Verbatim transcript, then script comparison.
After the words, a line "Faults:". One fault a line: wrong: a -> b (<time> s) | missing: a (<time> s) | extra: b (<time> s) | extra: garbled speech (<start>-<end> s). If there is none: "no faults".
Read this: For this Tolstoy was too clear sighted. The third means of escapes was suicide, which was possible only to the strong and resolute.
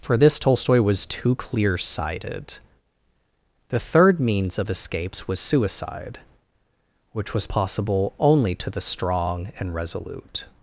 For this Tolstoy was too clear sighted. The third means of escapes was suicide, which was possible only to the strong and resolute.
Faults:
no faults